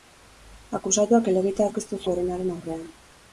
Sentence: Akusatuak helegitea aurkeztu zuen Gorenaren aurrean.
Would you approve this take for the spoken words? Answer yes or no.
no